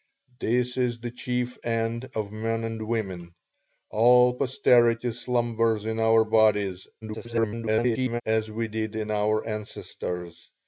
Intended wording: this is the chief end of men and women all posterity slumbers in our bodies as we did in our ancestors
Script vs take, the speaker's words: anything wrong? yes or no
yes